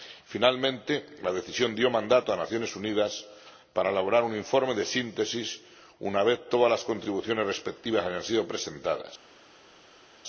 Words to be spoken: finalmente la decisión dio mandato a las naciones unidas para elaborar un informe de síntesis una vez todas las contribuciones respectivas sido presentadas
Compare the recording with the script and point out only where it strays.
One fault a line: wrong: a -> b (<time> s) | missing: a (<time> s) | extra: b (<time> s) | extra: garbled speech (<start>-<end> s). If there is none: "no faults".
extra: hayan (8.1 s)